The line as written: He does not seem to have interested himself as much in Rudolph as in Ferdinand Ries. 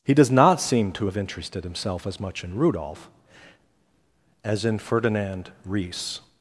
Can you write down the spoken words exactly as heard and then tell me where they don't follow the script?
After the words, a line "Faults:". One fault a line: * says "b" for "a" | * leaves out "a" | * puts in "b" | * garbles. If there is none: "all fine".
He does not seem to have interested himself as much in Rudolph as in Ferdinand Ries.
Faults:
all fine